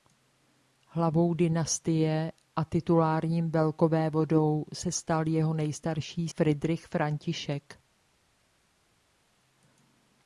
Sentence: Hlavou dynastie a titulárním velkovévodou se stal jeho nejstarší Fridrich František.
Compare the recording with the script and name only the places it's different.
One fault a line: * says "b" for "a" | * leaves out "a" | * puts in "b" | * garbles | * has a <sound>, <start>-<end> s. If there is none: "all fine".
all fine